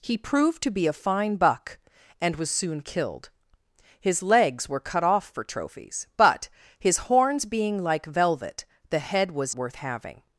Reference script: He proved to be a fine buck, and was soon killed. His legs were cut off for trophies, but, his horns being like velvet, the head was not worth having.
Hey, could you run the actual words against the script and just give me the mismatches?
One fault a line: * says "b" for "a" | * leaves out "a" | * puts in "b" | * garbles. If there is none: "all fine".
* leaves out "not"